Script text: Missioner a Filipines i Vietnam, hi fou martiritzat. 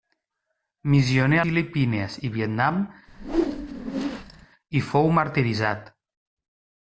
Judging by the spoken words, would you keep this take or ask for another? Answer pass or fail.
pass